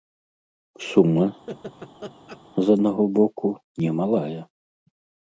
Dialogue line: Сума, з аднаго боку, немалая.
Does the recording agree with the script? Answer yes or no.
yes